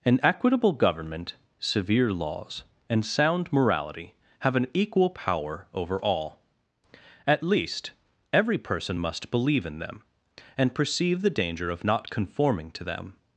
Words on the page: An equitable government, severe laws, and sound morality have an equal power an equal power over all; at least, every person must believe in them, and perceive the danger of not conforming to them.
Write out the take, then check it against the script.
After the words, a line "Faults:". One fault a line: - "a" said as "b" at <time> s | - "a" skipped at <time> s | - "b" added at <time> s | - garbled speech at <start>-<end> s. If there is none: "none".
An equitable government, severe laws, and sound morality have an equal power over all; at least, every person must believe in them, and perceive the danger of not conforming to them.
Faults:
- "an equal power" skipped at 5.7 s